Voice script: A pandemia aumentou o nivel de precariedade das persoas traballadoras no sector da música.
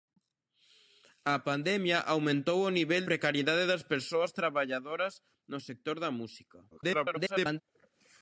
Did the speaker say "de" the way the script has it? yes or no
no